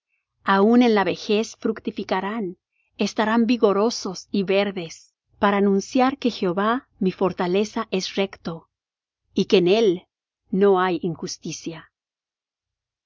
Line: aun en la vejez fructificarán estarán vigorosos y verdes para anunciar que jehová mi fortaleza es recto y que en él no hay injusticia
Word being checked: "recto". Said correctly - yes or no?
yes